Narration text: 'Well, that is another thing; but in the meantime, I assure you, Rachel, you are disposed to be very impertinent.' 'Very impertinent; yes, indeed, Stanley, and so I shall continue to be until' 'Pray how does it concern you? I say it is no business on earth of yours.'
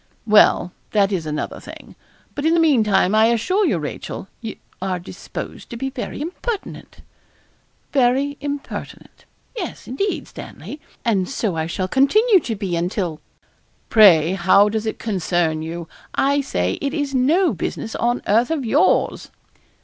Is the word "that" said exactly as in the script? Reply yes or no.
yes